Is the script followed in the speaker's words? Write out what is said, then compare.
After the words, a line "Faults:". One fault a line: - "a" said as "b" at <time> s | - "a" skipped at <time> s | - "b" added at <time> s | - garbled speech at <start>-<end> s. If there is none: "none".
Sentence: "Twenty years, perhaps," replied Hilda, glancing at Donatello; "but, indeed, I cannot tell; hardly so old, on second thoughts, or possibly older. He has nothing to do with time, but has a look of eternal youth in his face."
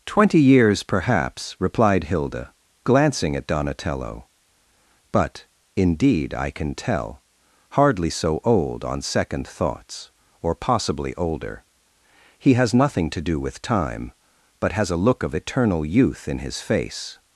"Twenty years, perhaps," replied Hilda, glancing at Donatello; "but, indeed, I can tell; hardly so old, on second thoughts, or possibly older. He has nothing to do with time, but has a look of eternal youth in his face."
Faults:
- "cannot" said as "can" at 6.5 s